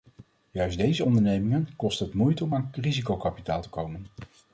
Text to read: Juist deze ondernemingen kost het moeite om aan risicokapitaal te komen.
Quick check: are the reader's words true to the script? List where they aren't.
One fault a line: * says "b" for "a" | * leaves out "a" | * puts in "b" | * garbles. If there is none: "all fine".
all fine